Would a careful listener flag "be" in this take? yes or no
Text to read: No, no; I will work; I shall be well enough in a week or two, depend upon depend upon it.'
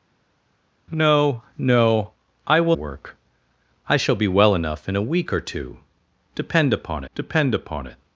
no